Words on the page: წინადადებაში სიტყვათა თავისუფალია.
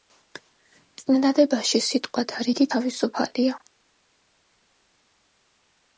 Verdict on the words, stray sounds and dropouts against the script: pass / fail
fail